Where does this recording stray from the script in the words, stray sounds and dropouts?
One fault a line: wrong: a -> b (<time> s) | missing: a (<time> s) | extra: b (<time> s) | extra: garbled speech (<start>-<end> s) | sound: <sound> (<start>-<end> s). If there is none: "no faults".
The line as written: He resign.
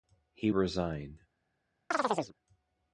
sound: chirp (1.9-2.3 s)